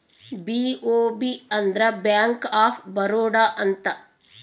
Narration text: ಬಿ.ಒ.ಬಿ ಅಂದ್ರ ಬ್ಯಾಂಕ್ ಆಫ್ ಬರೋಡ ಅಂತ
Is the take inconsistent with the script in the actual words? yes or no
no